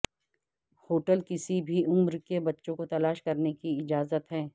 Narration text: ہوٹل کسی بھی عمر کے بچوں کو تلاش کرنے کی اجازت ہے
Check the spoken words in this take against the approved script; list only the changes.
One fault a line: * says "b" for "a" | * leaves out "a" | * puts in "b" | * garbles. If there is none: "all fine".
all fine